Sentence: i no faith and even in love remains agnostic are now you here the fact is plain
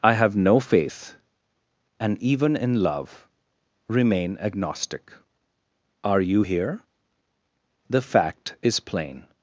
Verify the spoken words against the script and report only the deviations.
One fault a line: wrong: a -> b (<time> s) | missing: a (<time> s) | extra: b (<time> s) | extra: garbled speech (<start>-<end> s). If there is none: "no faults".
extra: have (0.1 s)
wrong: remains -> remain (3.9 s)
missing: now (6.2 s)